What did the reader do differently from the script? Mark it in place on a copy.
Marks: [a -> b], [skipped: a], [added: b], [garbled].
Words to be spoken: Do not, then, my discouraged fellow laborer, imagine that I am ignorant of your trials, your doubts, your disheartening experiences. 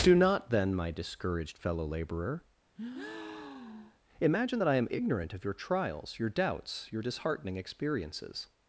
Do not, then, my discouraged fellow laborer, imagine that I am ignorant of your trials, your doubts, your disheartening experiences.